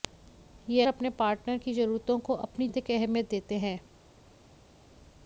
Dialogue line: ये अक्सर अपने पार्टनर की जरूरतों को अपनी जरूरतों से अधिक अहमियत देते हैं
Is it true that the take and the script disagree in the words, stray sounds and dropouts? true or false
true